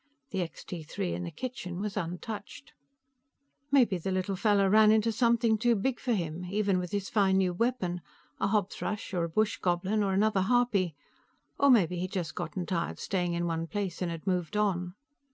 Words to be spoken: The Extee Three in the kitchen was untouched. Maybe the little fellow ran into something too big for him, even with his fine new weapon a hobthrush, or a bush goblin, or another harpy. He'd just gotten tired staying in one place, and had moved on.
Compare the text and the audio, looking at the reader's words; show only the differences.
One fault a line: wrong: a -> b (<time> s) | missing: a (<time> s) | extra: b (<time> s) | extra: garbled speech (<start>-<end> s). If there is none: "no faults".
extra: Or maybe (11.6 s)